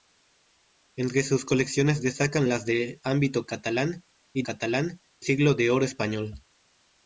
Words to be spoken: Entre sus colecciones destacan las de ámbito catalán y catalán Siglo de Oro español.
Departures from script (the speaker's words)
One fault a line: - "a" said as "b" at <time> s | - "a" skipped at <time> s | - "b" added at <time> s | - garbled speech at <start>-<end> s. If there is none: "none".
none